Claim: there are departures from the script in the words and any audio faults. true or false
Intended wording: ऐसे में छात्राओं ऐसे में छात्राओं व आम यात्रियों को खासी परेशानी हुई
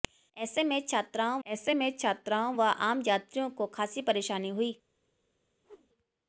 true